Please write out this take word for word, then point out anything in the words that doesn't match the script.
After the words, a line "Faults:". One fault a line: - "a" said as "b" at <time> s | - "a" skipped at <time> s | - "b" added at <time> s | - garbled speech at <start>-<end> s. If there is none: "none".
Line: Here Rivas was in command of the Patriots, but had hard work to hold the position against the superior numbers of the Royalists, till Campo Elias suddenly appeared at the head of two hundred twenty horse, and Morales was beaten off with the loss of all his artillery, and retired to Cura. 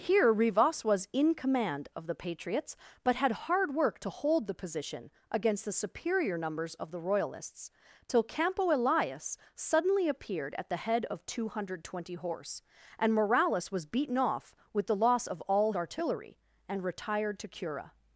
Here Rivas was in command of the Patriots, but had hard work to hold the position against the superior numbers of the Royalists, till Campo Elias suddenly appeared at the head of two hundred twenty horse, and Morales was beaten off with the loss of all artillery, and retired to Cura.
Faults:
- "his" skipped at 15.7 s